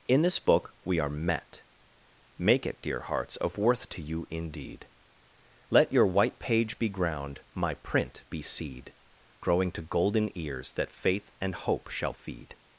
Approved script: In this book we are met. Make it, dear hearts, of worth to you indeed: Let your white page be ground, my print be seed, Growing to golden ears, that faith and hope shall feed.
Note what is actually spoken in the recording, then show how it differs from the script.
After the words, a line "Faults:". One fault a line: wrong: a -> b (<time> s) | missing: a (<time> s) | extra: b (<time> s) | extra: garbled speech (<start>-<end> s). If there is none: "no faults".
In this book we are met. Make it, dear hearts, of worth to you indeed: Let your white page be ground, my print be seed, Growing to golden ears, that faith and hope shall feed.
Faults:
no faults